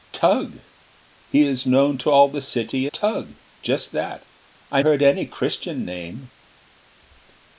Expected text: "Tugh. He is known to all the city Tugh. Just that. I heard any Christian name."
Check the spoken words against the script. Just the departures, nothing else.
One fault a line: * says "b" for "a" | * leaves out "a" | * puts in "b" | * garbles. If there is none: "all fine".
all fine